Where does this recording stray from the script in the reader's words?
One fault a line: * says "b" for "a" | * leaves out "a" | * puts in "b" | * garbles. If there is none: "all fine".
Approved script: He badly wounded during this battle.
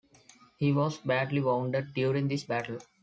* puts in "was"